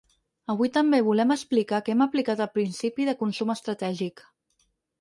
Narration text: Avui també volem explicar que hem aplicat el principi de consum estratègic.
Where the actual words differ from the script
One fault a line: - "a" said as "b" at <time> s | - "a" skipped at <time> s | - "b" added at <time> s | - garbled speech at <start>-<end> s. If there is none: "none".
none